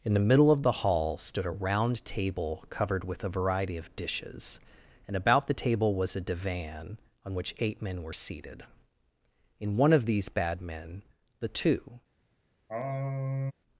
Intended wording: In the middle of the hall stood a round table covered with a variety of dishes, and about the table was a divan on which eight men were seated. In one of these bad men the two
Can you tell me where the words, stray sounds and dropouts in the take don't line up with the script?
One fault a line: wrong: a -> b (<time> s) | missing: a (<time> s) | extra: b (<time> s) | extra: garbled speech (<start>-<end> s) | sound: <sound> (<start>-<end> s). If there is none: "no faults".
sound: sigh (12.7-13.5 s)